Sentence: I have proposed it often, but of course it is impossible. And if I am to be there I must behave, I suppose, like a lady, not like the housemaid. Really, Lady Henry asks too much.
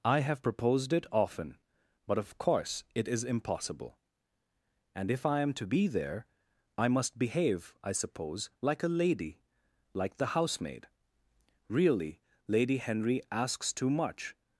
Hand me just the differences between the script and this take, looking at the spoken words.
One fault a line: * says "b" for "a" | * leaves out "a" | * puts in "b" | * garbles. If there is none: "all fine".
* leaves out "not"